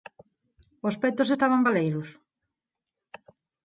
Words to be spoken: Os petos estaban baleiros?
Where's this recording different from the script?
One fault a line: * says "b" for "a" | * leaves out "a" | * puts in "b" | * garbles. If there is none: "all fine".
all fine